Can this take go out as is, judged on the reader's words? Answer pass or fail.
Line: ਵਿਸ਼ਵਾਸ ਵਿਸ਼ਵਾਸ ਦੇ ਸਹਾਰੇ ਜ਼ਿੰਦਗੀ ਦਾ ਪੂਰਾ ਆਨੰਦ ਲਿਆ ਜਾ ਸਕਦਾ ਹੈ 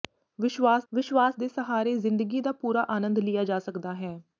pass